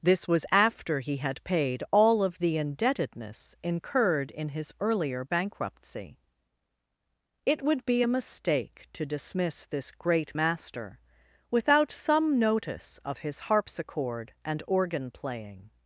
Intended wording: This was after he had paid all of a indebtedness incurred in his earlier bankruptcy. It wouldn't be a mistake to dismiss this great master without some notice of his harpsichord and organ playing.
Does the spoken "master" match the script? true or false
true